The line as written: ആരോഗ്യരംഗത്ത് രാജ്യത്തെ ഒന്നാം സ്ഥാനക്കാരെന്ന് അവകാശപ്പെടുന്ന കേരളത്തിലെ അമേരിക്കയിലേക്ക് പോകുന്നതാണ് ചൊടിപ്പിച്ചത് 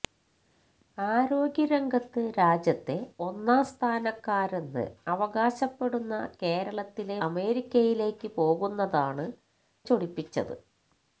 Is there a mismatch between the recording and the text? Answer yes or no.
no